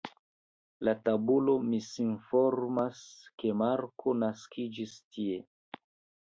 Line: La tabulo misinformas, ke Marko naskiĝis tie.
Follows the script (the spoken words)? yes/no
yes